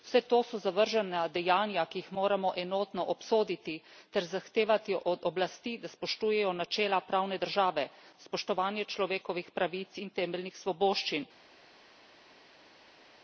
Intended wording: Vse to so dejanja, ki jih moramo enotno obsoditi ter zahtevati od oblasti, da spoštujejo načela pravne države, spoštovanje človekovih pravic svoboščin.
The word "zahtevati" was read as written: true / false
true